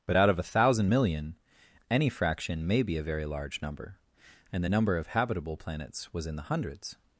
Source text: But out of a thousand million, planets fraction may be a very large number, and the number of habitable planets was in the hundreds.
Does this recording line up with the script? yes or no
no